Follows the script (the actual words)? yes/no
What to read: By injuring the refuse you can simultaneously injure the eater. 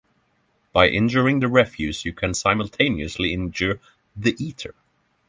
yes